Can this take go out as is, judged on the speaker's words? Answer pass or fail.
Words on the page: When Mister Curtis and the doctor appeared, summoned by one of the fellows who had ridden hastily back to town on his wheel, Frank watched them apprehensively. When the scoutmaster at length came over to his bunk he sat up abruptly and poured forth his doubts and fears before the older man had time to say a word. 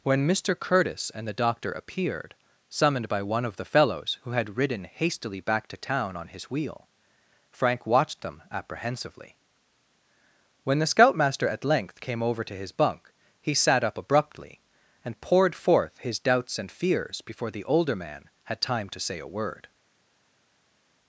pass